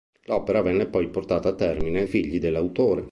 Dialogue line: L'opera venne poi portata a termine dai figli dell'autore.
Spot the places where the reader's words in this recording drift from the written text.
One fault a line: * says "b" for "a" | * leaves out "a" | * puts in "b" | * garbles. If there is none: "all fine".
* leaves out "dai"